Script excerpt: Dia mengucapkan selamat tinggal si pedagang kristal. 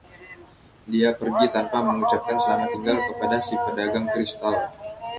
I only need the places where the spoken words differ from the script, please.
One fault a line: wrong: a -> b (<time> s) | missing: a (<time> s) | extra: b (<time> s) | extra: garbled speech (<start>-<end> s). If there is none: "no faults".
extra: pergi tanpa (1.1 s)
extra: kepada (3.0 s)